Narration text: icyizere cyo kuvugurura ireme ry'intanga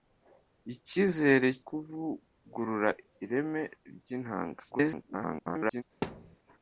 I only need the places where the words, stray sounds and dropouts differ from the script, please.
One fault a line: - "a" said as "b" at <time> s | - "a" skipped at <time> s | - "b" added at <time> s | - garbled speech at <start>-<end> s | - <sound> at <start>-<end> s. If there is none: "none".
- "cyo" skipped at 1.5 s
- garbled speech at 4.7-5.8 s
- thud at 6.0-6.4 s